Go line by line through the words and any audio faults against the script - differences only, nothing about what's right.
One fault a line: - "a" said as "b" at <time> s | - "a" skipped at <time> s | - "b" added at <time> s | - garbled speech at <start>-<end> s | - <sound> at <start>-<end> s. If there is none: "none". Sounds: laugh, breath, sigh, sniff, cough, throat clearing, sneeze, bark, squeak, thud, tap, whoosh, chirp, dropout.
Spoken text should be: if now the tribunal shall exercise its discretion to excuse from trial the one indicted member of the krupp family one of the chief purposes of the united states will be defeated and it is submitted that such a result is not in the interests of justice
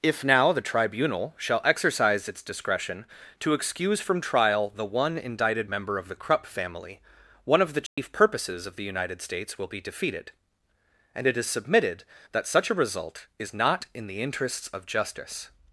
- dropout at 7.9-8.0 s